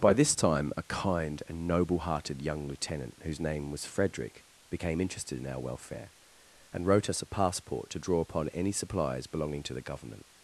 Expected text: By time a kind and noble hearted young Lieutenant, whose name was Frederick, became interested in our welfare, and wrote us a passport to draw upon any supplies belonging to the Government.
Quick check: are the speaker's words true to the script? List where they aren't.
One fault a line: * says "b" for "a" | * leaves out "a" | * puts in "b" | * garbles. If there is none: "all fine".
* puts in "this"